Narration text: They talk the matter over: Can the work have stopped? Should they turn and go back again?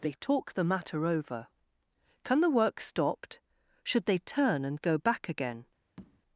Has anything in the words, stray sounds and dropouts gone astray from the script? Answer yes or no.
yes